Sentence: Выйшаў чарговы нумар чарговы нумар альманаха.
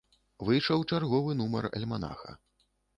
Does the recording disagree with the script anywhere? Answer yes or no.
yes